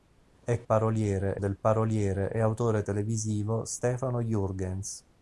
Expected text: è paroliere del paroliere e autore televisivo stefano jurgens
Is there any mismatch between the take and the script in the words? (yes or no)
no